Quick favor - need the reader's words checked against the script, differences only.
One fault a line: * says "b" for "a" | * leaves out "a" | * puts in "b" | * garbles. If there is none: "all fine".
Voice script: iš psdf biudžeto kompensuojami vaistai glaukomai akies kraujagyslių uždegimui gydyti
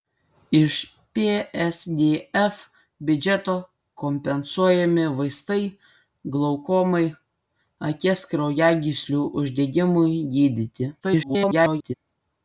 * garbles